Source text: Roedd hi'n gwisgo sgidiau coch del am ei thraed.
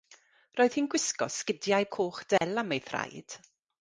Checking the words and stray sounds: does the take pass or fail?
fail